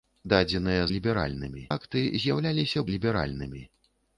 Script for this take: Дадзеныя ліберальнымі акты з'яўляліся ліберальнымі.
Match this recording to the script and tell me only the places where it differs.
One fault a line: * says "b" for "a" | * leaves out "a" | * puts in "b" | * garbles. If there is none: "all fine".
all fine